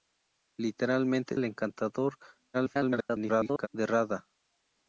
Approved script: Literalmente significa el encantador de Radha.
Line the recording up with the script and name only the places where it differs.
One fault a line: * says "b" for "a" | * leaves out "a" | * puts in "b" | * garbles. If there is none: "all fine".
* leaves out "significa"
* garbles